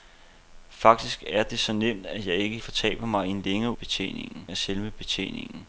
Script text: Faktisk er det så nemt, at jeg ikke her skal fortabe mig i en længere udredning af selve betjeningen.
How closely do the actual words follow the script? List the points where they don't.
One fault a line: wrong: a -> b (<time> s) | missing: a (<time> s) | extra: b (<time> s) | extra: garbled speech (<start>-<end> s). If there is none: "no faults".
missing: her skal (2.6 s)
wrong: udredning -> betjeningen (3.7 s)